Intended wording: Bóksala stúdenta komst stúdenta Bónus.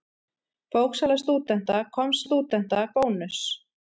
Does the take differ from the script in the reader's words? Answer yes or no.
no